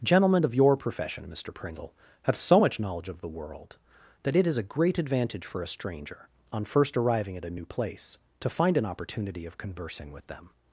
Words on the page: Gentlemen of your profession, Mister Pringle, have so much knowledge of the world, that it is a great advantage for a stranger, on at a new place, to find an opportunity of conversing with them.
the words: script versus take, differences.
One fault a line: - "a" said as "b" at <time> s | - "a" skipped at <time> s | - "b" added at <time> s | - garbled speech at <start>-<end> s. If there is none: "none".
- "first arriving" added at 6.7 s